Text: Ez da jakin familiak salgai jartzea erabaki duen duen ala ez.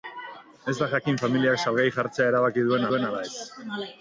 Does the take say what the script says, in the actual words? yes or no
yes